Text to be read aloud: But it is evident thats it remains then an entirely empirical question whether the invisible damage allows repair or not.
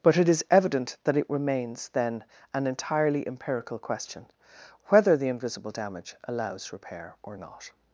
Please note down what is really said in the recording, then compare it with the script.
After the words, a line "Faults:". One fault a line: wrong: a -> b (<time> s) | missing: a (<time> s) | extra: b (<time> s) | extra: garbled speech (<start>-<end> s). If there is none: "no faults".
But it is evident that it remains then an entirely empirical question whether the invisible damage allows repair or not.
Faults:
wrong: thats -> that (1.0 s)